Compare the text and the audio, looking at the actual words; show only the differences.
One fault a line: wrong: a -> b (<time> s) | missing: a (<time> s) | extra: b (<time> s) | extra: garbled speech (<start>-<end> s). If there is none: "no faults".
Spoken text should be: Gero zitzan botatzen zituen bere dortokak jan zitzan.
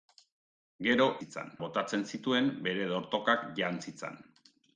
no faults